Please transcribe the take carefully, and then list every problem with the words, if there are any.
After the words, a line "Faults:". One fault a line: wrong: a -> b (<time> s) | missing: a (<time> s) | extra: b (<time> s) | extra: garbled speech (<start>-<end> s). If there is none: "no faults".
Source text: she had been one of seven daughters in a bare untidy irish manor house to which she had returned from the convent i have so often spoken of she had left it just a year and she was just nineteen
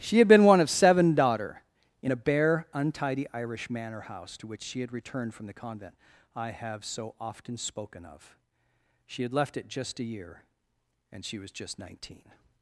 she had been one of seven daughter in a bare untidy irish manor house to which she had returned from the convent i have so often spoken of she had left it just a year and she was just nineteen
Faults:
wrong: daughters -> daughter (1.1 s)